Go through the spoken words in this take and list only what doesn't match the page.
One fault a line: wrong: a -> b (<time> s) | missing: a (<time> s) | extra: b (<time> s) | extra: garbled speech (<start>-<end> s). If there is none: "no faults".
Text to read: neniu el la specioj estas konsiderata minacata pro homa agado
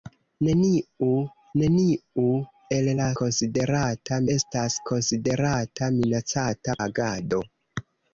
extra: neniu (1.6 s)
wrong: specioj -> konsiderata (3.2 s)
missing: pro homa (6.8 s)